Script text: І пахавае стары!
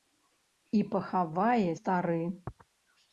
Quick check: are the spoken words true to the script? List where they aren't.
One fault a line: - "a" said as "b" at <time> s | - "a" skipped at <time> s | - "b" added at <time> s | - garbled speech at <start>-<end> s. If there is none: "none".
none